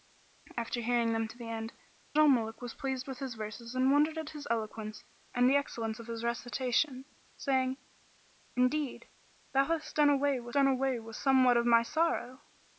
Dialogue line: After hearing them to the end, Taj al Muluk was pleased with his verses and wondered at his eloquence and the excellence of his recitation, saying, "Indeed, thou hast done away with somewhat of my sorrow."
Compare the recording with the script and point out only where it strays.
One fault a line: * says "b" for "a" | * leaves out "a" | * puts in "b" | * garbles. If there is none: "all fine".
* leaves out "Taj"
* puts in "done away with"